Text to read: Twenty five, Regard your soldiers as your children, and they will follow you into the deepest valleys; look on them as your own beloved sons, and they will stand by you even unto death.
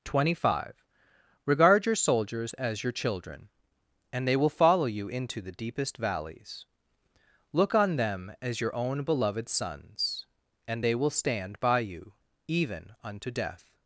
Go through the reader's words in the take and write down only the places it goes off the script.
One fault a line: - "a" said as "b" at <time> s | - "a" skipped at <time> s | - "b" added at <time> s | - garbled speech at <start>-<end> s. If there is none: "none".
none